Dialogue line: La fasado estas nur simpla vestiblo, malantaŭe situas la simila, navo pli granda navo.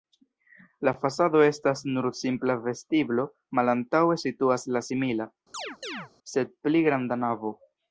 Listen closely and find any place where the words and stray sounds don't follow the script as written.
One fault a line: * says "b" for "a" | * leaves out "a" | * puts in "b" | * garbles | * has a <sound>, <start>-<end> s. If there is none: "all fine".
* has a chirp, 5.5-6.1 s
* says "sed" for "navo"